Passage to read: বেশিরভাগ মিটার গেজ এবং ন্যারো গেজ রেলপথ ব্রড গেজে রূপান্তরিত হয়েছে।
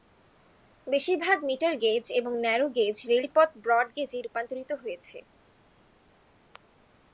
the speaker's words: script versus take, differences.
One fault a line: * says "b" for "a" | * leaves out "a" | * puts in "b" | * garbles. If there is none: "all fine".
all fine